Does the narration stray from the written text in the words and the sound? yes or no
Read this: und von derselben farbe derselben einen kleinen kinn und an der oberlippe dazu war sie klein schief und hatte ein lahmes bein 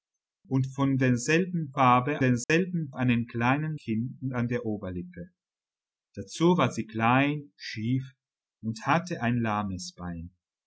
yes